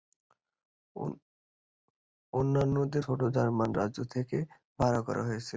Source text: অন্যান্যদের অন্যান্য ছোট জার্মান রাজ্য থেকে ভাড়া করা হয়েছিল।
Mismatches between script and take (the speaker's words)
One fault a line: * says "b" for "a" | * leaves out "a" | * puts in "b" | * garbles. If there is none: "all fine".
* leaves out "অন্যান্য"